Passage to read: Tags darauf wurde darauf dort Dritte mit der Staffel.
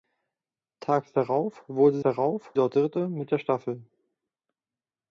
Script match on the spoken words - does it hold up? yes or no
yes